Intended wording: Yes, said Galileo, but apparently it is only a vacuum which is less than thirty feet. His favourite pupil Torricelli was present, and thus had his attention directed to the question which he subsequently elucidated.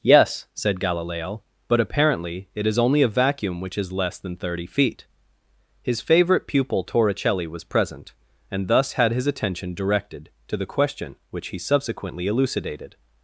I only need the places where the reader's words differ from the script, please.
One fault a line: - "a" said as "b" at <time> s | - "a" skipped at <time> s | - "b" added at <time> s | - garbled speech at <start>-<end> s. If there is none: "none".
none